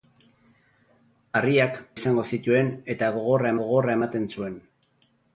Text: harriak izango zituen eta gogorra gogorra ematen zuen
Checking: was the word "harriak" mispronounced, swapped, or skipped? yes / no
no